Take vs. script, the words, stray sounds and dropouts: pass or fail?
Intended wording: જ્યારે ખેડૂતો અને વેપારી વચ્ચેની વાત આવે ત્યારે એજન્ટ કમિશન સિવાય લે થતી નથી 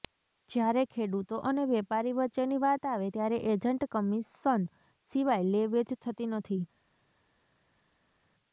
fail